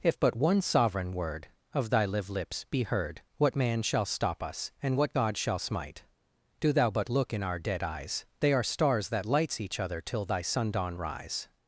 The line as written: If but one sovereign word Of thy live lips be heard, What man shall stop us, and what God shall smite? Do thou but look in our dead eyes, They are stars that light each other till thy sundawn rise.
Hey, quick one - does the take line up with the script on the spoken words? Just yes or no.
no